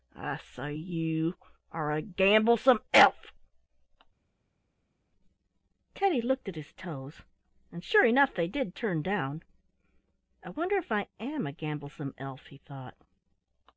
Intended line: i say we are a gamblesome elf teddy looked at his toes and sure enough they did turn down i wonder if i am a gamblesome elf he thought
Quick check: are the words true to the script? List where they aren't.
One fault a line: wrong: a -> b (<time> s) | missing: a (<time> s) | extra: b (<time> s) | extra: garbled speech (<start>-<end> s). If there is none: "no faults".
wrong: we -> you (0.7 s)